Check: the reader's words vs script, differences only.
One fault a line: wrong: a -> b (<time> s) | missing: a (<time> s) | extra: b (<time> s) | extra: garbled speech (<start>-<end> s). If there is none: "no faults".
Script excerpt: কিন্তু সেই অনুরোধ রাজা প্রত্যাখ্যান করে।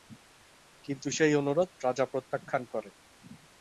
no faults